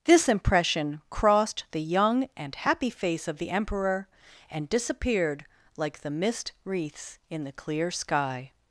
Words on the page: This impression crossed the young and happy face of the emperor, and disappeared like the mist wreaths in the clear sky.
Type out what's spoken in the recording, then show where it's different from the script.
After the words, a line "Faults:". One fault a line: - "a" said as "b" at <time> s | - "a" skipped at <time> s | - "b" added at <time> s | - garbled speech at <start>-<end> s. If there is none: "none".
This impression crossed the young and happy face of the emperor, and disappeared like the mist wreaths in the clear sky.
Faults:
none